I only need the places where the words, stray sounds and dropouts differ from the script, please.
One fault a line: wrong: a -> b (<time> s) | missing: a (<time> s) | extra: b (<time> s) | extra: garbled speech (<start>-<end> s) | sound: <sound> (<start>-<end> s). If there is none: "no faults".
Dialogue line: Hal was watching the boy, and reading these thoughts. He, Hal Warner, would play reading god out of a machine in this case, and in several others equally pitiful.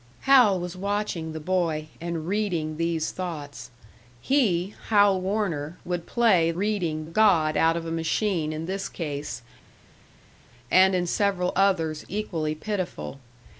no faults